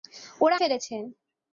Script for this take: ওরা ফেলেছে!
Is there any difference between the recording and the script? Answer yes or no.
no